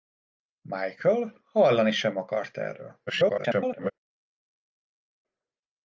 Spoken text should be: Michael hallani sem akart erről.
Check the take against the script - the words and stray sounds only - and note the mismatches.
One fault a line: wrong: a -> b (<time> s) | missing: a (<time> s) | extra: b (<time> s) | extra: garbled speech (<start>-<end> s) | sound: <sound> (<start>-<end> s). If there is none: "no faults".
extra: garbled speech (3.1-3.9 s)